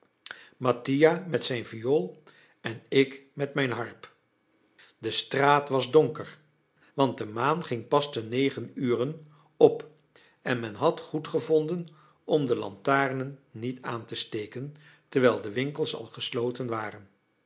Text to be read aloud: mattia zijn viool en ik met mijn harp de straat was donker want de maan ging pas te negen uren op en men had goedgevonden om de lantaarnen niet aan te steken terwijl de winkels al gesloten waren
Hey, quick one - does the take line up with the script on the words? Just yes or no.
no